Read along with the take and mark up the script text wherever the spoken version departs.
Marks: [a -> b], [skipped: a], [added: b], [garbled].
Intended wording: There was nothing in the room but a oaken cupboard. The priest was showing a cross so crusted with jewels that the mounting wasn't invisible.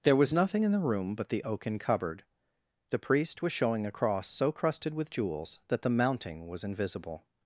There was nothing in the room but [a -> the] oaken cupboard. The priest was showing a cross so crusted with jewels that the mounting [wasn't -> was] invisible.